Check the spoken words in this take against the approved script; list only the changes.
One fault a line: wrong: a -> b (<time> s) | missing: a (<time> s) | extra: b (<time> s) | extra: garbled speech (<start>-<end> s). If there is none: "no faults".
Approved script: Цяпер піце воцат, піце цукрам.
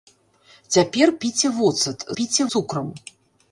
no faults